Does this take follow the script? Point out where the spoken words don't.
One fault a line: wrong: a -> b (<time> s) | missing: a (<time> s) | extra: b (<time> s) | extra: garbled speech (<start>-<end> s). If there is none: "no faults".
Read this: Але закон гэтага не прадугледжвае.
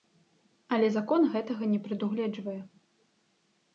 no faults